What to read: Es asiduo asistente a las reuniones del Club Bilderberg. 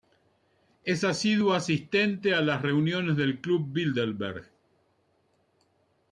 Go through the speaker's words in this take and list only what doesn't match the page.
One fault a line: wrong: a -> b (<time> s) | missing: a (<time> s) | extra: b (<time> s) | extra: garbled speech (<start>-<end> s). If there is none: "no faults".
no faults